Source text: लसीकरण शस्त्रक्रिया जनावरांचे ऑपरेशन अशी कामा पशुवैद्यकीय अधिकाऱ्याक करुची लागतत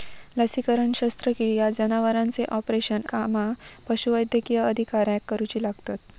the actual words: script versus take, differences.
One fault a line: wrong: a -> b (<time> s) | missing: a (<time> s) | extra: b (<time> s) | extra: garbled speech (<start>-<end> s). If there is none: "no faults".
missing: अशी (3.0 s)